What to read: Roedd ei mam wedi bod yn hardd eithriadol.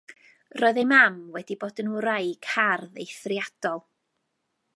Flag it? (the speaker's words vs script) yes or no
yes